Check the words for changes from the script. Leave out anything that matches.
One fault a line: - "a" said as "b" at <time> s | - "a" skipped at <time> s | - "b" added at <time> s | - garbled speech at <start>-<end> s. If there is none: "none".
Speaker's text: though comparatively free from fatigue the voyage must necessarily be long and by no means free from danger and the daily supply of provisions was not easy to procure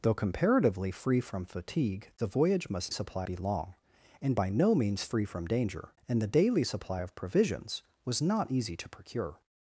- "necessarily" said as "supply" at 2.9 s